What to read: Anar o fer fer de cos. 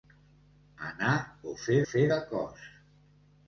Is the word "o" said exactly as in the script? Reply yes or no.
yes